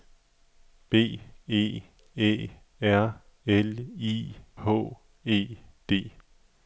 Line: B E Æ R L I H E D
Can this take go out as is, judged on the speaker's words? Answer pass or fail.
pass